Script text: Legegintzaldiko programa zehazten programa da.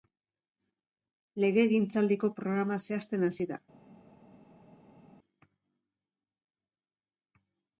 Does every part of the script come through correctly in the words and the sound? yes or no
no